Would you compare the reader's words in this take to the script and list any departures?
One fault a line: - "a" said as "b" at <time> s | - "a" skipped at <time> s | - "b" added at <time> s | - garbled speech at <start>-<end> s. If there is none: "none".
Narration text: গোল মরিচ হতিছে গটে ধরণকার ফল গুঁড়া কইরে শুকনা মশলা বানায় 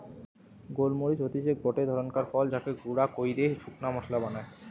- "যাকে" added at 2.5 s